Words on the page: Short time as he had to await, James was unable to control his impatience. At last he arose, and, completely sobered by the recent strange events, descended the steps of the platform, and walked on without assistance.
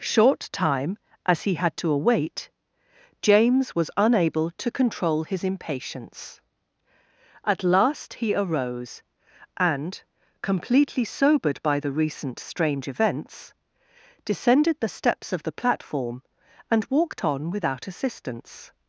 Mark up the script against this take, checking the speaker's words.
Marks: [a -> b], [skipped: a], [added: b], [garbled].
Short time as he had to await, James was unable to control his impatience. At last he arose, and, completely sobered by the recent strange events, descended the steps of the platform, and walked on without assistance.